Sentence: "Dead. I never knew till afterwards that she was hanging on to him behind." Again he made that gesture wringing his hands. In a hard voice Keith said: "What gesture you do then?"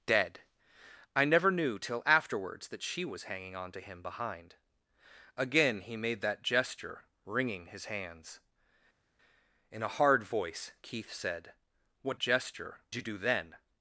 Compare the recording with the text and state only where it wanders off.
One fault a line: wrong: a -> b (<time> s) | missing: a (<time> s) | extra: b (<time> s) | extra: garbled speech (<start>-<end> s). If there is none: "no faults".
no faults